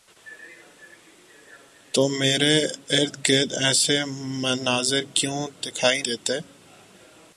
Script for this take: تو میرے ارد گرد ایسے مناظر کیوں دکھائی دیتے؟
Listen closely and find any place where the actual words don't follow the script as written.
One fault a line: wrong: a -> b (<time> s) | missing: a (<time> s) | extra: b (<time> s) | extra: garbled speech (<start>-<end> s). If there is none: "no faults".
no faults